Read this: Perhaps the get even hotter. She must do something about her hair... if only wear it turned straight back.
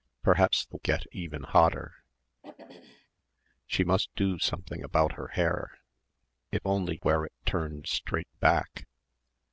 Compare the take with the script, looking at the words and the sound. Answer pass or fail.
fail